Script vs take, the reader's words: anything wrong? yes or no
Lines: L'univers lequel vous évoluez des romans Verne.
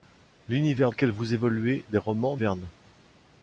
no